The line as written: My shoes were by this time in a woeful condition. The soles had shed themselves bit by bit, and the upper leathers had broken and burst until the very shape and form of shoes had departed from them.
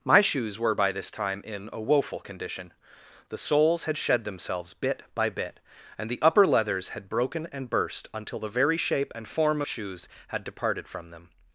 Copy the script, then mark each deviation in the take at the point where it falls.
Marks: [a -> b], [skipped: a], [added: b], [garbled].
My shoes were by this time in a woeful condition. The soles had shed themselves bit by bit, and the upper leathers had broken and burst until the very shape and form [skipped: of] shoes had departed from them.